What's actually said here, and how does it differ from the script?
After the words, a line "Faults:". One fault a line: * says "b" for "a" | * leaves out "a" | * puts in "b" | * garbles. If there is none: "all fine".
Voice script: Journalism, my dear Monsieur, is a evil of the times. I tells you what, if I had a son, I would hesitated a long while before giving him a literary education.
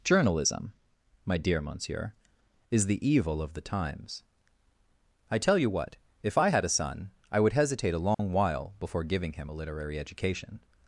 Journalism, my dear Monsieur, is the evil of the times. I tell you what, if I had a son, I would hesitate a long while before giving him a literary education.
Faults:
* says "the" for "a"
* says "tell" for "tells"
* says "hesitate" for "hesitated"